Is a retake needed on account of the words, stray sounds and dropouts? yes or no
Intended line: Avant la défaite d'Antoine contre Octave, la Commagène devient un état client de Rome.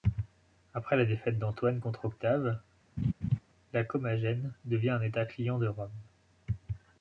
yes